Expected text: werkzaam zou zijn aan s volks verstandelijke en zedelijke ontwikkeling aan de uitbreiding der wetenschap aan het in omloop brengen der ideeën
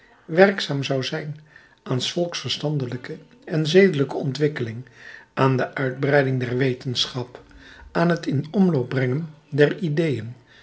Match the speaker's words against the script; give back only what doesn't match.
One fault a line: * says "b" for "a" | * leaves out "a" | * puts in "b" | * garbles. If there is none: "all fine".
all fine